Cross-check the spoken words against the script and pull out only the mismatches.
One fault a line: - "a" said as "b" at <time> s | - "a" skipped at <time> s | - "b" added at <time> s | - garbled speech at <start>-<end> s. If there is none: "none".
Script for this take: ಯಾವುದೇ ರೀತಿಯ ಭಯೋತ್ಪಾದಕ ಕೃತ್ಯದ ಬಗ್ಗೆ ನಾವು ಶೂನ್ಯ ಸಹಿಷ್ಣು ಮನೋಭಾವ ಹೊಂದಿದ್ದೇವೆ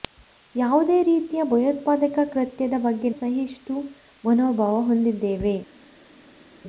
- "ನಾವು ಶೂನ್ಯ" skipped at 3.1 s